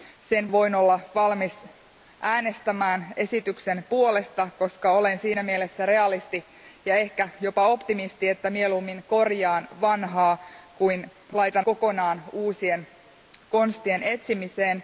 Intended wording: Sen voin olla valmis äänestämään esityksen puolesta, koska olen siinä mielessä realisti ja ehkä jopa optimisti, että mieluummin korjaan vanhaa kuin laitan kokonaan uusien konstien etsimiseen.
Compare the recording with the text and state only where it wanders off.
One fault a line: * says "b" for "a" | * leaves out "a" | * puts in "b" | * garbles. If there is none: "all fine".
all fine